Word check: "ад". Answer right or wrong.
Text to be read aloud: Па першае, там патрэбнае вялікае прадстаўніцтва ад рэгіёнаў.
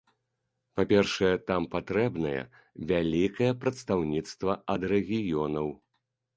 right